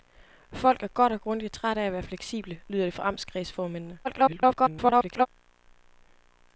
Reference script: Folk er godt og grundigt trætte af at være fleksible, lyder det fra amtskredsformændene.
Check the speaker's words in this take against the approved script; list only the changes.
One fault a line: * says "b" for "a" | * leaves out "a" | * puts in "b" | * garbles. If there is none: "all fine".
* garbles